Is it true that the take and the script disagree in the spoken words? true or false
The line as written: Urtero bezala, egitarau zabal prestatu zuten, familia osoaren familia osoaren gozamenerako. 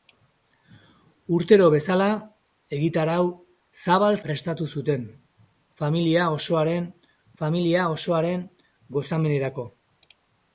false